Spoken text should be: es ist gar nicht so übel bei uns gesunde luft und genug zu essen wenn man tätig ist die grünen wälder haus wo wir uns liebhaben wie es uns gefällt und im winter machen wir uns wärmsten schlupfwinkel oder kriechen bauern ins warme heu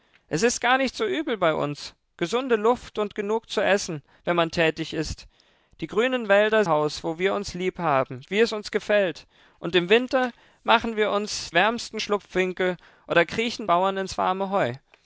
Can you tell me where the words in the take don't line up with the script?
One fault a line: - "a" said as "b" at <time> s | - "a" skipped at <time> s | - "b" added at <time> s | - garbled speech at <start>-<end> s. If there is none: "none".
none